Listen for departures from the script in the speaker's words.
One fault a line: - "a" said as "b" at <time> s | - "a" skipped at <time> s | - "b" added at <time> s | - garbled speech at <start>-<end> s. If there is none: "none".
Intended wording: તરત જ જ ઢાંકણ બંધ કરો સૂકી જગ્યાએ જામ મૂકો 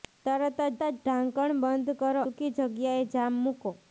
none